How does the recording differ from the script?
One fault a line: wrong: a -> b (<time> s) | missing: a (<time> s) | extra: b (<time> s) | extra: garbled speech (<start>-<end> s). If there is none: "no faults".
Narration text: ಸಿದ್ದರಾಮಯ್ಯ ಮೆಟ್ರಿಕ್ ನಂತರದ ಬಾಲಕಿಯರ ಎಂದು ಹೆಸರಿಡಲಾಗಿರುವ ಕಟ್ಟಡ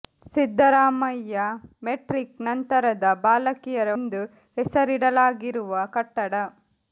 no faults